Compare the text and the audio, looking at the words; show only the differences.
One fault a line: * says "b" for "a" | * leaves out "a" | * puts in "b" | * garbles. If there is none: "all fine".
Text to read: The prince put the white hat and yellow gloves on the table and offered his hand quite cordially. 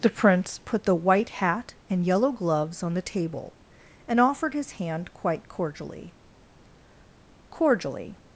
* puts in "cordially"